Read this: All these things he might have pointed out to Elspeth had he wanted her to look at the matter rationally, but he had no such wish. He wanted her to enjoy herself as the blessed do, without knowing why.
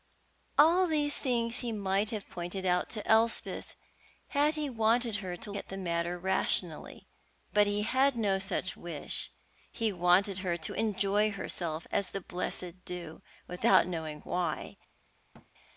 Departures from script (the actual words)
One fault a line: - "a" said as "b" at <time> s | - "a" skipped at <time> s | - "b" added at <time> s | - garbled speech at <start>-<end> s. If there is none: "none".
- "look" skipped at 5.5 s